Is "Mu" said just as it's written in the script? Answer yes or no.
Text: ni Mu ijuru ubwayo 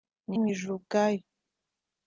yes